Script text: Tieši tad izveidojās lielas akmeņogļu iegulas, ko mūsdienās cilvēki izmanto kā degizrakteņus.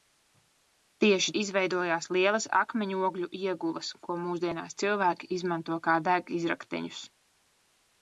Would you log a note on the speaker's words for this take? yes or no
yes